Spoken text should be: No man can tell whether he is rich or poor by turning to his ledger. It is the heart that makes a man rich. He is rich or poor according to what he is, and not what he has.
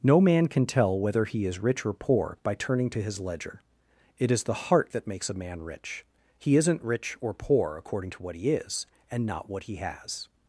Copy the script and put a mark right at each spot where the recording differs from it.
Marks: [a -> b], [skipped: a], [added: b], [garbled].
No man can tell whether he is rich or poor by turning to his ledger. It is the heart that makes a man rich. He [is -> isn't] rich or poor according to what he is, and not what he has.